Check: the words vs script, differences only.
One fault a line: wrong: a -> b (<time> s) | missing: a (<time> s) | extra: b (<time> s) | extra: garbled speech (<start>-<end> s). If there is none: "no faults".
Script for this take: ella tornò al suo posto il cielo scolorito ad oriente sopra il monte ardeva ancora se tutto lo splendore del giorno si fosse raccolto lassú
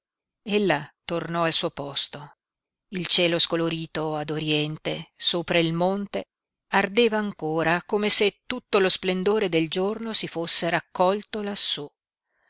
extra: come (7.8 s)